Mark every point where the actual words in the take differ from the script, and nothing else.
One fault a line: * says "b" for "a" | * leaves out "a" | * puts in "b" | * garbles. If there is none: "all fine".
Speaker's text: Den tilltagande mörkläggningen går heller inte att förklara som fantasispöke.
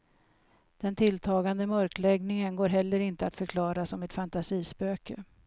* puts in "ett"